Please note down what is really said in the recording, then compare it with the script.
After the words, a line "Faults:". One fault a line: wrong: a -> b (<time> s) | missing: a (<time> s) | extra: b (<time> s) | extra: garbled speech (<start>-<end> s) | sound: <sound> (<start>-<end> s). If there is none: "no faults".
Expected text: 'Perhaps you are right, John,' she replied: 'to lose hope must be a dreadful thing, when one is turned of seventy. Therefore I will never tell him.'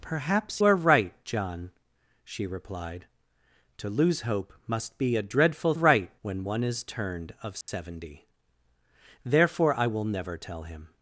'Perhaps are right, John,' she replied: 'to lose hope must be a dreadful right, when one is turned of seventy. Therefore I will never tell him.'
Faults:
missing: you (0.6 s)
wrong: thing -> right (5.7 s)
sound: dropout (7.6-7.7 s)